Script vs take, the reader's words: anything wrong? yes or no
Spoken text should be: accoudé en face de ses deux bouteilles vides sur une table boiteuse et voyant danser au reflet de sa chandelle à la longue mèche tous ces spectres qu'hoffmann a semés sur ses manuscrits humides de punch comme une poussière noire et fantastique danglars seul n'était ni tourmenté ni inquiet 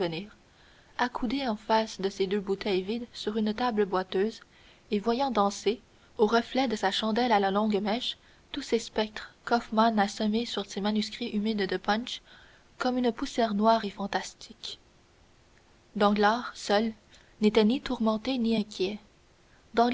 no